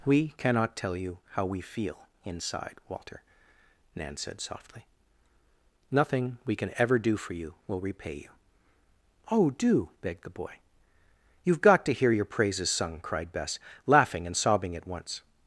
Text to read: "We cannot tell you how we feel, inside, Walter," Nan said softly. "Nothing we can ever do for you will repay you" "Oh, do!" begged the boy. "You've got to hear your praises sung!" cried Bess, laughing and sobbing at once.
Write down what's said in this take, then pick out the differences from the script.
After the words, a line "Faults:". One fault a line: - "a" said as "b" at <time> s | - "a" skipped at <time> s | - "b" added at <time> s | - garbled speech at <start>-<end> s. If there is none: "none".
"We cannot tell you how we feel, inside, Walter," Nan said softly. "Nothing we can ever do for you will repay you" "Oh, do!" begged the boy. "You've got to hear your praises sung!" cried Bess, laughing and sobbing at once.
Faults:
none